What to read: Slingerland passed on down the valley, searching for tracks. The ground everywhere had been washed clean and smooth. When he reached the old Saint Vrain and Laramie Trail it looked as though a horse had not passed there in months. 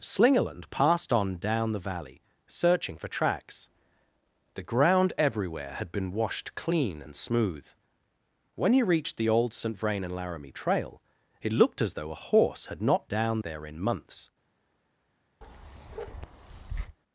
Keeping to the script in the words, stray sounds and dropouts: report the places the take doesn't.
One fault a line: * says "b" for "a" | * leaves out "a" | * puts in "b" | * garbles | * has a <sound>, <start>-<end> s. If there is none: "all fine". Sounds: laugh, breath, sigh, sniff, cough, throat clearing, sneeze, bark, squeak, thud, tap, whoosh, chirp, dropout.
* says "down" for "passed"
* has a bark, 15.4-17.0 s